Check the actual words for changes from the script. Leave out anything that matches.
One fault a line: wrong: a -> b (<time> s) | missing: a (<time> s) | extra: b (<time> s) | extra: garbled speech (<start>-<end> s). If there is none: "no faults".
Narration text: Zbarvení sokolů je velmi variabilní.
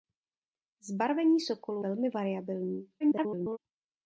missing: je (1.9 s)
extra: garbled speech (3.0-3.6 s)